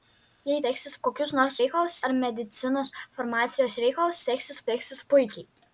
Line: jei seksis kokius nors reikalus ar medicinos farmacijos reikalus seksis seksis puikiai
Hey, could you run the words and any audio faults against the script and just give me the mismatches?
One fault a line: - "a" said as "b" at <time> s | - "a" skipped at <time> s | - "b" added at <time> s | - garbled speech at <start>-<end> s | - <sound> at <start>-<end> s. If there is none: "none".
none